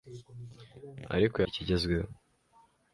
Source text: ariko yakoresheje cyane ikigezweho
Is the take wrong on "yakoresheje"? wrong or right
wrong